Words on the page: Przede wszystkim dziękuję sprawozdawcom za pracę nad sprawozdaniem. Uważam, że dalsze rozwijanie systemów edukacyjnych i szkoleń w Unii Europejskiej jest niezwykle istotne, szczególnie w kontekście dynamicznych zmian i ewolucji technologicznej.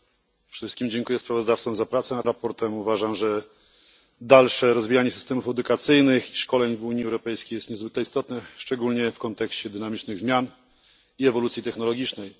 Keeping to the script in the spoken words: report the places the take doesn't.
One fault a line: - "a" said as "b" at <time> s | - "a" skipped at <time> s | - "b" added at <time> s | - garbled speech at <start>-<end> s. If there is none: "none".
none